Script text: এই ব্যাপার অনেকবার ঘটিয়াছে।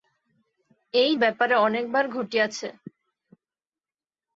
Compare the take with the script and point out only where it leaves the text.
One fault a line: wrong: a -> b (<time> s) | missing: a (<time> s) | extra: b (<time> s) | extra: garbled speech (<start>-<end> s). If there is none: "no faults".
no faults